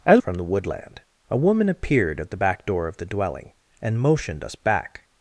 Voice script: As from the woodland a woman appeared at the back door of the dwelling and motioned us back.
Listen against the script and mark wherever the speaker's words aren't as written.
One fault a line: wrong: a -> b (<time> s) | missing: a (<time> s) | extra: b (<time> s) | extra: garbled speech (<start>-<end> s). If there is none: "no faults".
no faults